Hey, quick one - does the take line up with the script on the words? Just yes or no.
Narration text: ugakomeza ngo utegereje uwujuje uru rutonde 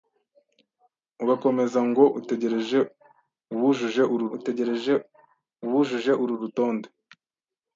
no